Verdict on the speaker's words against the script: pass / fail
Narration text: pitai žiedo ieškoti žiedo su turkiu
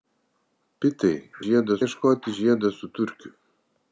pass